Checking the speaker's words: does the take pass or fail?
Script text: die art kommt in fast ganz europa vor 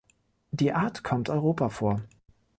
fail